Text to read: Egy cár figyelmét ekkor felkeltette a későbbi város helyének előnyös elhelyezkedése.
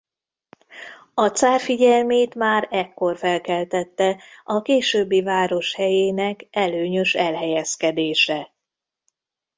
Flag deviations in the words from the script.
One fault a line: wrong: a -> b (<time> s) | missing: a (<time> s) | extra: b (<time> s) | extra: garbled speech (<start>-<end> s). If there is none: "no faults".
wrong: Egy -> A (1.1 s)
extra: már (2.3 s)